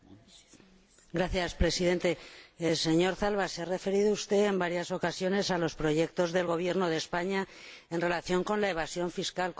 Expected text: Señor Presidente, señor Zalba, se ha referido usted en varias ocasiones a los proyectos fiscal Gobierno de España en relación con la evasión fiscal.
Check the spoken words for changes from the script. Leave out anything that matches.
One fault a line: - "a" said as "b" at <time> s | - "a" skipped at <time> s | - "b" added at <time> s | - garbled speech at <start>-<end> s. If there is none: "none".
- "fiscal" said as "del" at 6.3 s